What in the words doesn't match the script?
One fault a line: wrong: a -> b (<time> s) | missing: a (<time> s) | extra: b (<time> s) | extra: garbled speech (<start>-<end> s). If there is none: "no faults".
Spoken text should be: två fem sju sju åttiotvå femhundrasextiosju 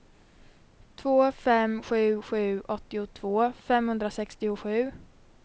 no faults